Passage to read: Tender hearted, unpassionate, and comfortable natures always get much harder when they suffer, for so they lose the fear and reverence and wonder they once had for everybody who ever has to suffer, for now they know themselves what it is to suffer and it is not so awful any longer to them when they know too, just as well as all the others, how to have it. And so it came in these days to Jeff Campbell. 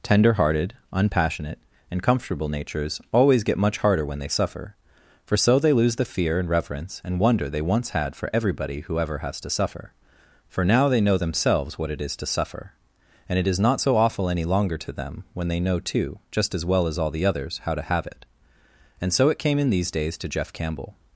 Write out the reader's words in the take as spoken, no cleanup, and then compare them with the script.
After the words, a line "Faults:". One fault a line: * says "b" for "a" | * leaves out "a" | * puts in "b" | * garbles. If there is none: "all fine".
Tender hearted, unpassionate, and comfortable natures always get much harder when they suffer, for so they lose the fear and reverence and wonder they once had for everybody who ever has to suffer, for now they know themselves what it is to suffer and it is not so awful any longer to them when they know too, just as well as all the others, how to have it. And so it came in these days to Jeff Campbell.
Faults:
all fine